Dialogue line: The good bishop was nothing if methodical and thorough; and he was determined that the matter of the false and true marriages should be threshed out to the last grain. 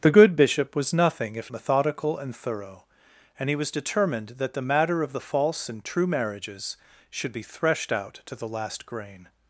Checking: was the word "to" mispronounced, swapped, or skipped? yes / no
no